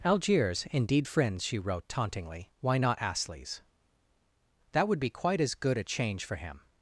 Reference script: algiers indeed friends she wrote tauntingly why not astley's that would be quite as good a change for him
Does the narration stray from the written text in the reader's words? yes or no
no